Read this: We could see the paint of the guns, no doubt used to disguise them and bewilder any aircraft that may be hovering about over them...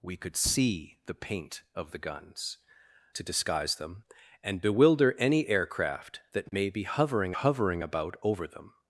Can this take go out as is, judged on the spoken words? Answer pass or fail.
fail